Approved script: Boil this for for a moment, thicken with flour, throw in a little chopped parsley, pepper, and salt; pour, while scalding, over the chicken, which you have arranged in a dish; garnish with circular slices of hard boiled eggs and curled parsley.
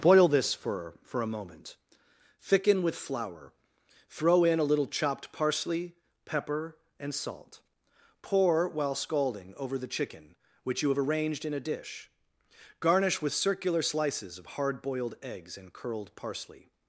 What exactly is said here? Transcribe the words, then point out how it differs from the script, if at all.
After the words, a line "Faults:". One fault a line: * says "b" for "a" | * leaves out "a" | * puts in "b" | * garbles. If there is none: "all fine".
Boil this for for a moment, thicken with flour, throw in a little chopped parsley, pepper, and salt; pour, while scalding, over the chicken, which you have arranged in a dish; garnish with circular slices of hard boiled eggs and curled parsley.
Faults:
all fine